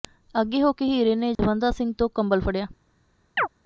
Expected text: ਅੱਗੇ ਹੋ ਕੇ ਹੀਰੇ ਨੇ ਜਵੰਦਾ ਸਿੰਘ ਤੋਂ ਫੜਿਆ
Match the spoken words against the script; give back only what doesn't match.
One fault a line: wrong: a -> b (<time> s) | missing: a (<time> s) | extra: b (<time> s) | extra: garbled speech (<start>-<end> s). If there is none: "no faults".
extra: ਕੰਬਲ (2.1 s)